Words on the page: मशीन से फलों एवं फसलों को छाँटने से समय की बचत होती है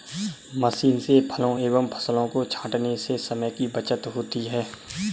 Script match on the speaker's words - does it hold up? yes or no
yes